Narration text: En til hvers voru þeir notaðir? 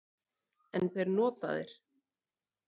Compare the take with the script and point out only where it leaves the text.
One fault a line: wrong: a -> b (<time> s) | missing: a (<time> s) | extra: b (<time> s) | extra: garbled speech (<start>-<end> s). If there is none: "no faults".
missing: til hvers voru (0.9 s)